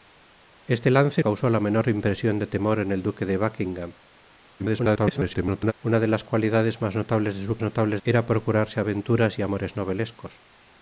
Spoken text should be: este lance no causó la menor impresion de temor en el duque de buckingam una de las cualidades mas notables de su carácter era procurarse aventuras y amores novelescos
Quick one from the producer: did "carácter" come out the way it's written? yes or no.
no